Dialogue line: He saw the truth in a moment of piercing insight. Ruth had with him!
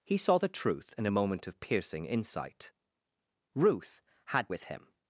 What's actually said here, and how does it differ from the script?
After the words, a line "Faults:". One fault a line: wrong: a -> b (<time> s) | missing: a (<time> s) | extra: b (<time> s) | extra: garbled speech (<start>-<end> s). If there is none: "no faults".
He saw the truth in a moment of piercing insight. Ruth had with him!
Faults:
no faults